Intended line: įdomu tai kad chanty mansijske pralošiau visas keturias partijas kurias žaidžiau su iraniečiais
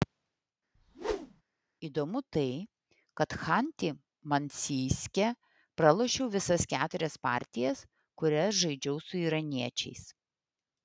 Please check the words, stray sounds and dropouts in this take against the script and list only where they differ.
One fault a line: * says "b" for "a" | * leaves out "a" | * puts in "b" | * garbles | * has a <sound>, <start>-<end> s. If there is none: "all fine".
* has a whoosh, 0.8-1.4 s